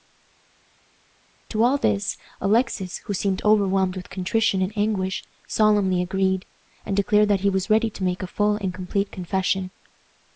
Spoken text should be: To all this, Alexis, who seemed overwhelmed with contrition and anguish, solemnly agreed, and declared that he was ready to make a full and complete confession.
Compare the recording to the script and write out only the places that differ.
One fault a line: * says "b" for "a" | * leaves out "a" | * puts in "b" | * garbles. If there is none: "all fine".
all fine